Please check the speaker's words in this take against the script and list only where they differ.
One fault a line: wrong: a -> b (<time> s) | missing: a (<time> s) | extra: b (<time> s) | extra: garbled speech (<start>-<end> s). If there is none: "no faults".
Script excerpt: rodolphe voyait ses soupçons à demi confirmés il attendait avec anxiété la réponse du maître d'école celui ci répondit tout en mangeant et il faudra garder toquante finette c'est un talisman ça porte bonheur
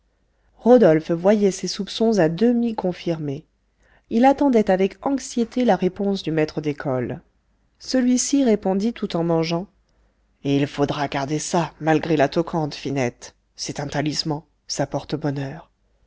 extra: ça malgré la (11.4 s)